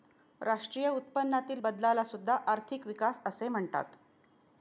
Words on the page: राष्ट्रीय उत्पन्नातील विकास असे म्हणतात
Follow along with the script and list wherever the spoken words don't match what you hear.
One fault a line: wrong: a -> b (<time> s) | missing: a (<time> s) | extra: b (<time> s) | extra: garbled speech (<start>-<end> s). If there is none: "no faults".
extra: बदलाला सुद्धा आर्थिक (1.6 s)